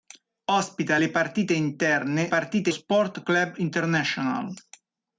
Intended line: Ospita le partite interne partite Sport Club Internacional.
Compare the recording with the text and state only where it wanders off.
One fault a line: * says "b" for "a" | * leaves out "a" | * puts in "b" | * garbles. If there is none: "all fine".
all fine